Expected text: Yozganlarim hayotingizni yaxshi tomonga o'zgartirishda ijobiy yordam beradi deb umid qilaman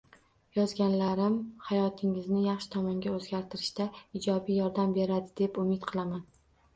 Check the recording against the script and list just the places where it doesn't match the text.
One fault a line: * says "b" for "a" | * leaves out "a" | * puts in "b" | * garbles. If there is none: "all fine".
all fine